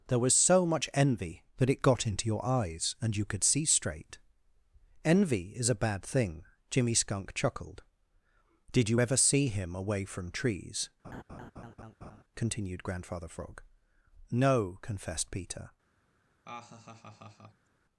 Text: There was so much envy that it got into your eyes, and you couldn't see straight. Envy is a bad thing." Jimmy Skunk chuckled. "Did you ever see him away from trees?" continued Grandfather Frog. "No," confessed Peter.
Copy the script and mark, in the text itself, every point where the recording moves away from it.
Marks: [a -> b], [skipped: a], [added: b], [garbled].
There was so much envy that it got into your eyes, and you [couldn't -> could] see straight. Envy is a bad thing." Jimmy Skunk chuckled. "Did you ever see him away from trees?" continued Grandfather Frog. "No," confessed Peter.